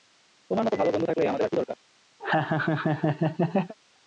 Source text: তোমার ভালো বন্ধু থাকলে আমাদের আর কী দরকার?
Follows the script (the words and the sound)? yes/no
no